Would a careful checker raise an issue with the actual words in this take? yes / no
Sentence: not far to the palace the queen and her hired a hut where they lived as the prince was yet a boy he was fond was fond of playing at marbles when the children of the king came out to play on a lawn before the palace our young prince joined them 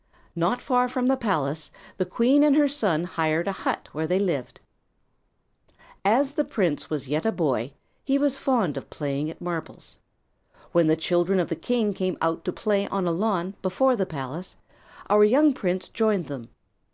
yes